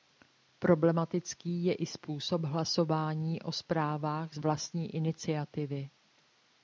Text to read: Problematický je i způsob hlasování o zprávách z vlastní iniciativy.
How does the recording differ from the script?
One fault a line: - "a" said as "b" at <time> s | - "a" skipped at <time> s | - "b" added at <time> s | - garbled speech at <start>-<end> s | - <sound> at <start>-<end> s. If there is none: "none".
none